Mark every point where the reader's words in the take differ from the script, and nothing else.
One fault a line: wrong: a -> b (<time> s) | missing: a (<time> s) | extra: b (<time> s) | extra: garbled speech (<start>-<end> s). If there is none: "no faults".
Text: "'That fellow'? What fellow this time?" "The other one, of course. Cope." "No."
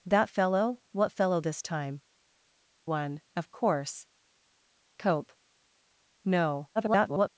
missing: The other (2.0 s)
extra: garbled speech (6.8-7.3 s)